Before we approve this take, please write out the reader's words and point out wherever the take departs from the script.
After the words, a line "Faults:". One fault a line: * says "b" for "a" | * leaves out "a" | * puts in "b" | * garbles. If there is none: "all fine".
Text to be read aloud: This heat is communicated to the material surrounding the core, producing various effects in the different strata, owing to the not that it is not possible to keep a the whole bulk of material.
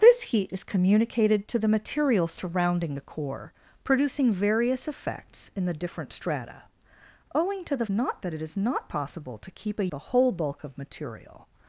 This heat is communicated to the material surrounding the core, producing various effects in the different strata, owing to the not that it is not possible to keep a the whole bulk of material.
Faults:
all fine